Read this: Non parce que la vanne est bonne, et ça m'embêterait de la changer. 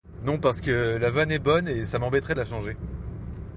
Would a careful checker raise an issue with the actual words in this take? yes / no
no